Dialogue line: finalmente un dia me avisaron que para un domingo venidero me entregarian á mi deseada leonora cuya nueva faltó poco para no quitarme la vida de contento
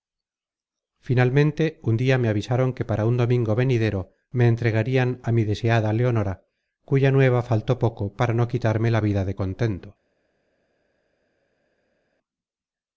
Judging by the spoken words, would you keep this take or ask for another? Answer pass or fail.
pass